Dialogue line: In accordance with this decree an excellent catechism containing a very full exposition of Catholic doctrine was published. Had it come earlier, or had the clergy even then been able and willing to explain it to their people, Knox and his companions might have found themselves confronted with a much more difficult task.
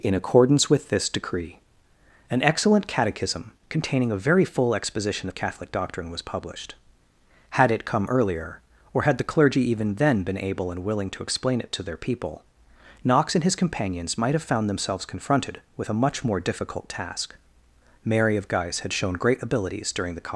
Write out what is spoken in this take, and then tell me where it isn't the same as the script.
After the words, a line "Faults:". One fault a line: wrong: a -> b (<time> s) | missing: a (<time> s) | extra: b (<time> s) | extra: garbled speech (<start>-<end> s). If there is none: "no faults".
In accordance with this decree an excellent catechism containing a very full exposition of Catholic doctrine was published. Had it come earlier, or had the clergy even then been able and willing to explain it to their people, Knox and his companions might have found themselves confronted with a much more difficult task. Mary of Guise had shown great abilities during the
Faults:
extra: Mary of Guise had shown great abilities during the (18.0 s)